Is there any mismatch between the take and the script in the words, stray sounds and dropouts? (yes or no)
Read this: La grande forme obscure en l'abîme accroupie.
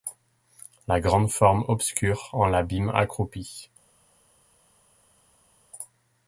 no